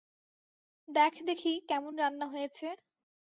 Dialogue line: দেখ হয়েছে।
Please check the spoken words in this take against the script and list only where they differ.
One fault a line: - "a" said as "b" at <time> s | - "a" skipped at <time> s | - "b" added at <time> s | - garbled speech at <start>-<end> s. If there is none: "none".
- "দেখি কেমন রান্না" added at 1.3 s